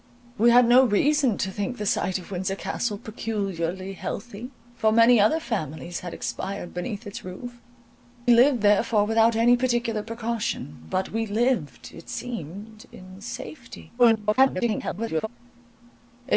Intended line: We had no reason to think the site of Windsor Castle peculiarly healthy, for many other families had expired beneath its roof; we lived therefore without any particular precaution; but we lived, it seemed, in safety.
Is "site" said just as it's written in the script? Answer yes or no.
yes